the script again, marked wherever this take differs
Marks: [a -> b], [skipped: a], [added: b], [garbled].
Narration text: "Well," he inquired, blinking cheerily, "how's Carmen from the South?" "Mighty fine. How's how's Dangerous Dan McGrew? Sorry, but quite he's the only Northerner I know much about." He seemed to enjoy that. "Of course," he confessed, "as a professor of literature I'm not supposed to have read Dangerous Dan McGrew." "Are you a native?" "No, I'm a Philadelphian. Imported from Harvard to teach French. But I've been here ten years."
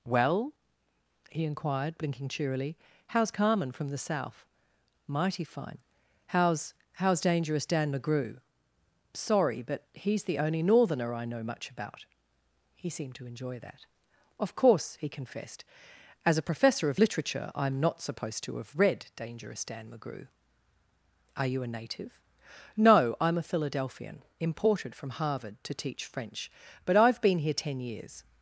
"Well," he inquired, blinking cheerily, "how's Carmen from the South?" "Mighty fine. How's how's Dangerous Dan McGrew? Sorry, but [skipped: quite] he's the only Northerner I know much about." He seemed to enjoy that. "Of course," he confessed, "as a professor of literature I'm not supposed to have read Dangerous Dan McGrew." "Are you a native?" "No, I'm a Philadelphian. Imported from Harvard to teach French. But I've been here ten years."